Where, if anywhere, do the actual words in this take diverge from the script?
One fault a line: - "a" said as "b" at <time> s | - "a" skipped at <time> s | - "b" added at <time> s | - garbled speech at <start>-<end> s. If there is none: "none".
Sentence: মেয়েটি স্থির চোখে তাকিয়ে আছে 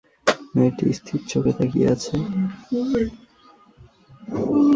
none